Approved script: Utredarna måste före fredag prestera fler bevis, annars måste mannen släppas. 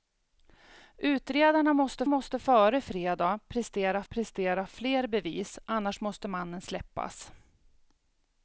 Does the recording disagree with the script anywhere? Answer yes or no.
yes